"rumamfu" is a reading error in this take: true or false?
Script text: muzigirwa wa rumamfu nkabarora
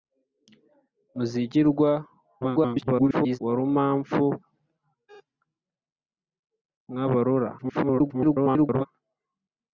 false